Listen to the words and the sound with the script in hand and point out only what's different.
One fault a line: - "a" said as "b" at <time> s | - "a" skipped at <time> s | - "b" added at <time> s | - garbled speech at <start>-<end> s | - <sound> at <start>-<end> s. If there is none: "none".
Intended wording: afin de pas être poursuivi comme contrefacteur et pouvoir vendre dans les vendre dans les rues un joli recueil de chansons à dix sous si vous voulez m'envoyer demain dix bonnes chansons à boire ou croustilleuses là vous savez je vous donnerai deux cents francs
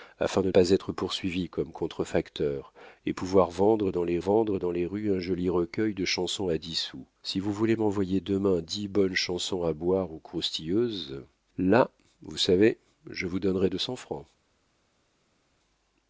none